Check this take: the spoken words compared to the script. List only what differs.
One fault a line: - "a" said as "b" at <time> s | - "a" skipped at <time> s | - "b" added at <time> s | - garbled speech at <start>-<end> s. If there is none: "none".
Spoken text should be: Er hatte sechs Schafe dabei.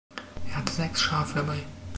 none